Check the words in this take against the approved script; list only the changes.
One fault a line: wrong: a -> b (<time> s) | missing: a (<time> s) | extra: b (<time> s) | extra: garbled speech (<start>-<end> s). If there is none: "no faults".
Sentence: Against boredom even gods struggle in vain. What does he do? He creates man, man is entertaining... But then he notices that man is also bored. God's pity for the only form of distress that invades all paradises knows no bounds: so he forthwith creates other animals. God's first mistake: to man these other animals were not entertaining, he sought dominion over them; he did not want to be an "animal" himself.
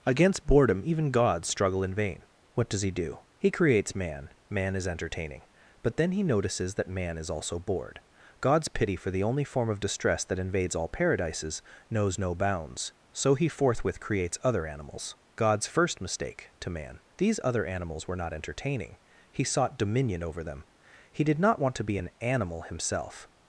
no faults